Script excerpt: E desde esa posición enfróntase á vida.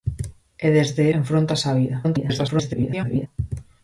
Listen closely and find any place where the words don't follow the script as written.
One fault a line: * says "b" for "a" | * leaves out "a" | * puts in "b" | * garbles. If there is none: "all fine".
* leaves out "esa posición"
* garbles